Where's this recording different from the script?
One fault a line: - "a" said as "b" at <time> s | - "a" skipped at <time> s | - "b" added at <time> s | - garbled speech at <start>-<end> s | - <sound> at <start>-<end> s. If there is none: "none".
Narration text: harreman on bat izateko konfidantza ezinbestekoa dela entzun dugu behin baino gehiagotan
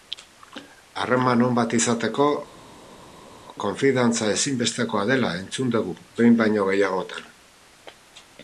none